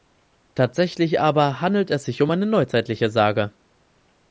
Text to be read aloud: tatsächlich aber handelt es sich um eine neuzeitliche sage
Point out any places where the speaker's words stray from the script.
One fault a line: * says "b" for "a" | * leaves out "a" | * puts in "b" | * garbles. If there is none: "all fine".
all fine